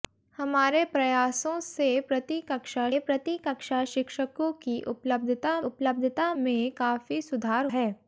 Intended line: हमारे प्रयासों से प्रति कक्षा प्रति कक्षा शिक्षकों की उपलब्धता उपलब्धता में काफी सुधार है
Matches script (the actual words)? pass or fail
pass